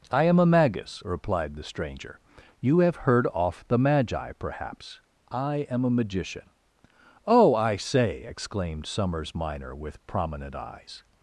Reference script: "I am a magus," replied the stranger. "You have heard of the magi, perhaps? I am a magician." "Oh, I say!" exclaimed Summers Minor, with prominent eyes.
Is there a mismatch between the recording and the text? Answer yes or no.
yes